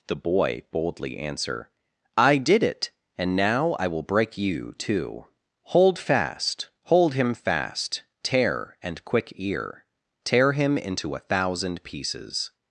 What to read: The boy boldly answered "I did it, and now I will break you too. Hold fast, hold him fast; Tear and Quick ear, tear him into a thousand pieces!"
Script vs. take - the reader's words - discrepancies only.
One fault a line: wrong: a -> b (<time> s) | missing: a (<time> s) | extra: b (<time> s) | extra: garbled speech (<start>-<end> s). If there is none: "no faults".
wrong: answered -> answer (1.2 s)